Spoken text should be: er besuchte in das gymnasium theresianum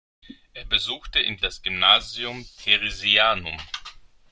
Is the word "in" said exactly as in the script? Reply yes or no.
yes